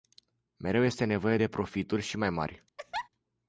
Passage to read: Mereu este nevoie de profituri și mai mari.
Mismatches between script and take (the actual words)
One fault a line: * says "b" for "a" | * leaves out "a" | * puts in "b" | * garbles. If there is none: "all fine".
all fine